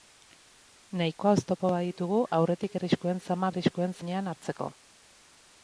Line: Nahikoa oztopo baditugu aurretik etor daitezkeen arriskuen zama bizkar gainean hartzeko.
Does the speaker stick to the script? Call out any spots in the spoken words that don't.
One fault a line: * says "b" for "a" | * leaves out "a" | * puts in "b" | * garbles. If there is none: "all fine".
* leaves out "etor daitezkeen"
* says "arriskuen" for "bizkar"